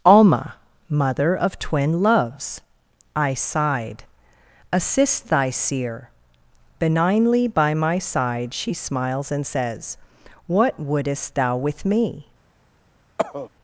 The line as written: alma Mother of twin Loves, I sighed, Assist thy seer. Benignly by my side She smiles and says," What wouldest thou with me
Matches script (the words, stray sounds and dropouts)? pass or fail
fail